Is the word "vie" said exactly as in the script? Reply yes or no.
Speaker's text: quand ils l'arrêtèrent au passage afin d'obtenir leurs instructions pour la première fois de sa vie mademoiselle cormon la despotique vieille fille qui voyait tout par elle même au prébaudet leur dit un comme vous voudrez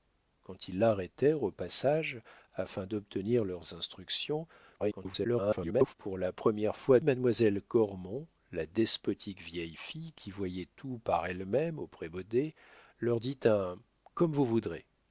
no